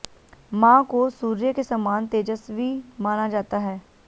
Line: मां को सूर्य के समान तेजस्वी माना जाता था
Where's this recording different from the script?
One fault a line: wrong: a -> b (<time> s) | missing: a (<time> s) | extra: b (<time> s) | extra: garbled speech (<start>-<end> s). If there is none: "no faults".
wrong: था -> है (3.6 s)